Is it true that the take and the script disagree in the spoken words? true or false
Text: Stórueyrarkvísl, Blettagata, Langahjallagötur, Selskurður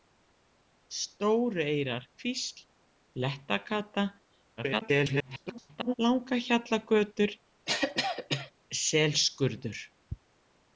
true